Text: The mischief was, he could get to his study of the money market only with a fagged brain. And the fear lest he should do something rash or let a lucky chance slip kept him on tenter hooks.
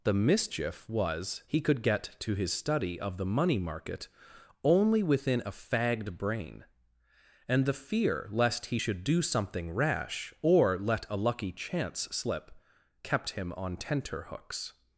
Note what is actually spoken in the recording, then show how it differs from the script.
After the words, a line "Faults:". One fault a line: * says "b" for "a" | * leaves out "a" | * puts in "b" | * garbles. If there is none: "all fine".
The mischief was, he could get to his study of the money market only within a fagged brain. And the fear lest he should do something rash or let a lucky chance slip kept him on tenter hooks.
Faults:
* says "within" for "with"